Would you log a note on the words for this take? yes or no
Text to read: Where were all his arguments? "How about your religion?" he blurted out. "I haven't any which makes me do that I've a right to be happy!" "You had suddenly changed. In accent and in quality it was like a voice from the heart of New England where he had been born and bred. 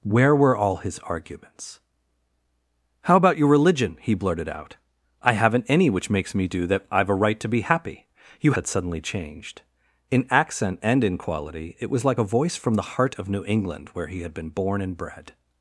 no